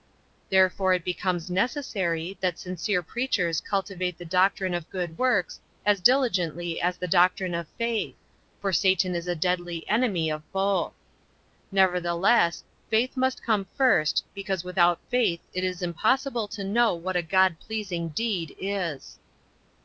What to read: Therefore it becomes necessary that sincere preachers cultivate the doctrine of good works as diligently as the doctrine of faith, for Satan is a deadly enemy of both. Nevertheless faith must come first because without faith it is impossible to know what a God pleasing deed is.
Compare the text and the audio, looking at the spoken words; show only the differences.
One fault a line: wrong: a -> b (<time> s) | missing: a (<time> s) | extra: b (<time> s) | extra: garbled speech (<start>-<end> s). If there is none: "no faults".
no faults